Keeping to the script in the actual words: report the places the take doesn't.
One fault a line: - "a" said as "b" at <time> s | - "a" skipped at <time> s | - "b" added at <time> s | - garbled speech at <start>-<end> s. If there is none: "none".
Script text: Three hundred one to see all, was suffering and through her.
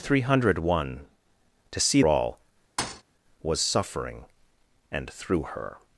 none